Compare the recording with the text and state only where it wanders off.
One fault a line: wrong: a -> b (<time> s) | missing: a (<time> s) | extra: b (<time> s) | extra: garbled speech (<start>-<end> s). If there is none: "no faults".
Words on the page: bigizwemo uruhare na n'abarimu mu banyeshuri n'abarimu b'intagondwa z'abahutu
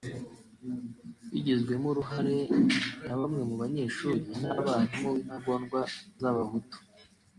wrong: n'abarimu -> bamwe (3.2 s)